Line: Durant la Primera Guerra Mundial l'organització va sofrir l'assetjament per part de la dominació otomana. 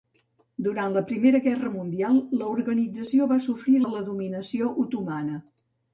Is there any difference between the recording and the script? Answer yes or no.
yes